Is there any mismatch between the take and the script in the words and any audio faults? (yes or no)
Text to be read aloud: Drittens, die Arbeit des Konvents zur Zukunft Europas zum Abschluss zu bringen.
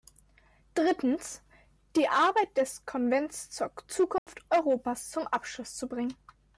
yes